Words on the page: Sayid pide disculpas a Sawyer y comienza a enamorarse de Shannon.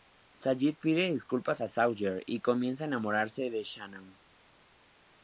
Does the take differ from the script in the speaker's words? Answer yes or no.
no